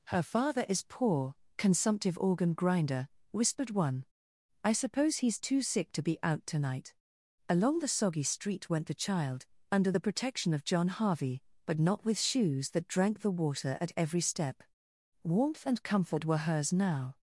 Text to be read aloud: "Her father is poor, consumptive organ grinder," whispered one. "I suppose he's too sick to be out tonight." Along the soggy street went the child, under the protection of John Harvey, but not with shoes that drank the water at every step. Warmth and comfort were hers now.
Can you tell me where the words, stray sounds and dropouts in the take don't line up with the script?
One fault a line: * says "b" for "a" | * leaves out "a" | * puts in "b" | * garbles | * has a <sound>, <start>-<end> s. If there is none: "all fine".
all fine